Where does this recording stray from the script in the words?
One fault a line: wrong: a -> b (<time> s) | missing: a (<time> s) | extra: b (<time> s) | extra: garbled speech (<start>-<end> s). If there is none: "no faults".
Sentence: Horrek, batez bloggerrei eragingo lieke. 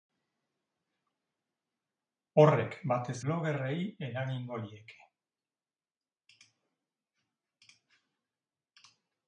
no faults